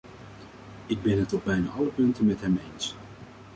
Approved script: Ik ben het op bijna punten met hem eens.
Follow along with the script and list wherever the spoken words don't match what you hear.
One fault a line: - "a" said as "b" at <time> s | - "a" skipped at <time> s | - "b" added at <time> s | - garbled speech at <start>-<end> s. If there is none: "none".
- "alle" added at 1.7 s